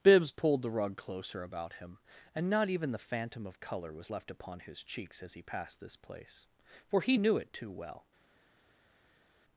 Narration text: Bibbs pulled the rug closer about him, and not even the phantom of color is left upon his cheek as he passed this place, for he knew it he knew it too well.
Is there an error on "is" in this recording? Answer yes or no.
yes